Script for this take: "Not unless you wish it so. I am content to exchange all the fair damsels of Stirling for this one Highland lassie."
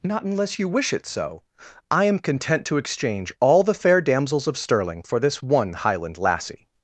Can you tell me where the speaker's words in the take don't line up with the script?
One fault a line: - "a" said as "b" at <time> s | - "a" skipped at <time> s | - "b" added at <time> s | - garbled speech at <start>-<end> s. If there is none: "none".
none